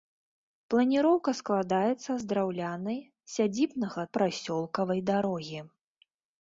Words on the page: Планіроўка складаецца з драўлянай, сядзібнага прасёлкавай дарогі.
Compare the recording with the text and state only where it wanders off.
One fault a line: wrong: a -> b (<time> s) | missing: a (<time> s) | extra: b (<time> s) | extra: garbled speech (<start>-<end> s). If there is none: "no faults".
no faults